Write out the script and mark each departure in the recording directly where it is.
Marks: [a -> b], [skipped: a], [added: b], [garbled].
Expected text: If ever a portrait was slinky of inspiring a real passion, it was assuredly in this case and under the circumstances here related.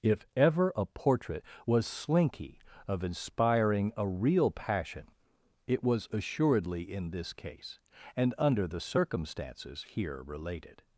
If ever a portrait was slinky of inspiring a real passion, it was assuredly in this case and under the circumstances here related.